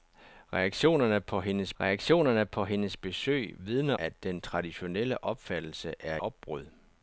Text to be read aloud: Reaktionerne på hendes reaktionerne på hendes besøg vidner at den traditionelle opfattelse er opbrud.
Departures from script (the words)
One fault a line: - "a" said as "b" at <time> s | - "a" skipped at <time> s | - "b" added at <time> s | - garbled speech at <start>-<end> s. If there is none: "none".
none